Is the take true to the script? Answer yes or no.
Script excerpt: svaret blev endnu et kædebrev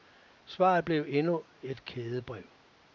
yes